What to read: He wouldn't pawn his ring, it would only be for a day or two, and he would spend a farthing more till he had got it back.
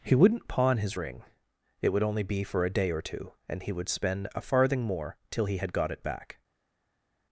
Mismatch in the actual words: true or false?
false